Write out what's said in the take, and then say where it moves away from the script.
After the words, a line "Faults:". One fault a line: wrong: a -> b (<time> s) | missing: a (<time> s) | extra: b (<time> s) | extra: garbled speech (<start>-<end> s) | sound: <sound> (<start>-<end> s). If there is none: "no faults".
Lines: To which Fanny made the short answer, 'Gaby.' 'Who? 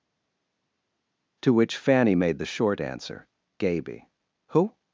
To which Fanny made the short answer, 'Gaby.' 'Who?
Faults:
no faults